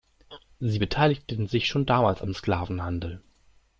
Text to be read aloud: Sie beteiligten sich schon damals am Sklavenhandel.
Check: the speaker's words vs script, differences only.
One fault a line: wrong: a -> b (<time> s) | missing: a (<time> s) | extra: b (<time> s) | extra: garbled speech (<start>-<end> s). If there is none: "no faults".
no faults